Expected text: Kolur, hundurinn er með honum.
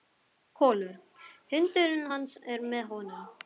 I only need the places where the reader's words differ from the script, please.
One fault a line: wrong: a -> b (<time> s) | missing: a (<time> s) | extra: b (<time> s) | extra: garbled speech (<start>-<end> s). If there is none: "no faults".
extra: hans (2.1 s)